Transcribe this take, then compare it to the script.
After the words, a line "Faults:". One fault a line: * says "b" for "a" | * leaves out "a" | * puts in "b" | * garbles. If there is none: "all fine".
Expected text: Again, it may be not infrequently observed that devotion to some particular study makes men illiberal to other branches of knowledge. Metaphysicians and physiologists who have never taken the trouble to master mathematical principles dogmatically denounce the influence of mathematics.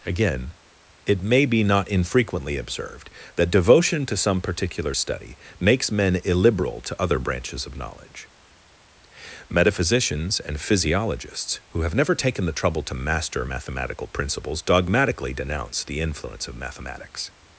Again, it may be not infrequently observed that devotion to some particular study makes men illiberal to other branches of knowledge. Metaphysicians and physiologists who have never taken the trouble to master mathematical principles dogmatically denounce the influence of mathematics.
Faults:
all fine